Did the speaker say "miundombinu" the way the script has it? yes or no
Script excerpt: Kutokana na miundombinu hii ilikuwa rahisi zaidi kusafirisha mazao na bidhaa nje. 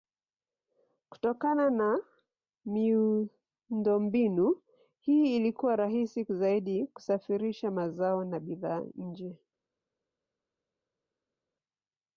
yes